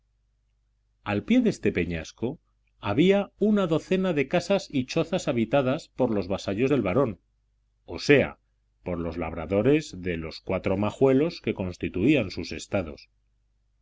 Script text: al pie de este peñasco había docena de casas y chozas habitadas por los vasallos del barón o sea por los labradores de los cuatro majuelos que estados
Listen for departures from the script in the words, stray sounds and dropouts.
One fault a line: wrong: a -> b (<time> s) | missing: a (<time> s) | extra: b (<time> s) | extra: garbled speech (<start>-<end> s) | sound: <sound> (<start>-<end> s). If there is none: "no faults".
extra: una (3.4 s)
extra: constituían sus (11.5 s)